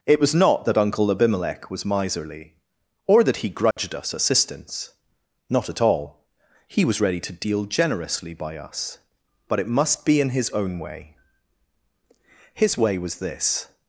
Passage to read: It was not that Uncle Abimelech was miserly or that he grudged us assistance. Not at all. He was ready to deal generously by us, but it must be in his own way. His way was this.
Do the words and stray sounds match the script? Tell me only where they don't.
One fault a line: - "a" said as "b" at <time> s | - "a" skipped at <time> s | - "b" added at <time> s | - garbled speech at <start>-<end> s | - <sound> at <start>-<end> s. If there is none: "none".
- dropout at 3.7-3.8 s